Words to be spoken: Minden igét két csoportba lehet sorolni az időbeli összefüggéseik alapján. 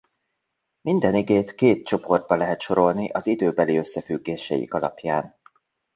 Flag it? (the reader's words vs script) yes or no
no